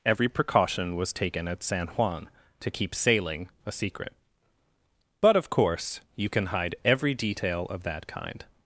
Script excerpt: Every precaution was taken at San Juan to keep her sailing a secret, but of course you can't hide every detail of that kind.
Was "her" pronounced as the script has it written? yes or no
no